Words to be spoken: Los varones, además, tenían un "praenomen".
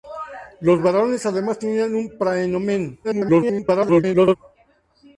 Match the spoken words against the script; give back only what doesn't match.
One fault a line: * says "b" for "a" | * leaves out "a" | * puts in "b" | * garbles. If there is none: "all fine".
* garbles